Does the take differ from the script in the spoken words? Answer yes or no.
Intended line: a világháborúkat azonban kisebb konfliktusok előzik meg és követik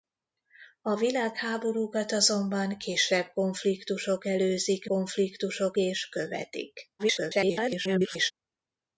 yes